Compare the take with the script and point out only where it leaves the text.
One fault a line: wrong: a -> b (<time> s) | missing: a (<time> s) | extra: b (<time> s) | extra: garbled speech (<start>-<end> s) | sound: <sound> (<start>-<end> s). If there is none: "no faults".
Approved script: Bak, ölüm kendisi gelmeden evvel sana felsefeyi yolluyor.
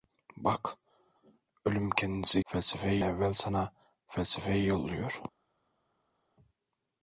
wrong: gelmeden -> felsefeyi (2.4 s)